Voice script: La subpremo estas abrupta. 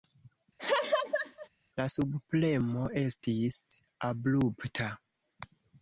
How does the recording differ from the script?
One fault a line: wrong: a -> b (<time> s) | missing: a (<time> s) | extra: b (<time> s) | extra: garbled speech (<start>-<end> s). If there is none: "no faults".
wrong: estas -> estis (3.0 s)